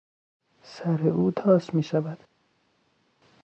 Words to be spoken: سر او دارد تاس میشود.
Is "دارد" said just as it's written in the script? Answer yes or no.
no